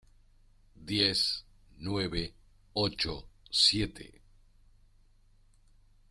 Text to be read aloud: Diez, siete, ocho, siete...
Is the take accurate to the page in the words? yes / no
no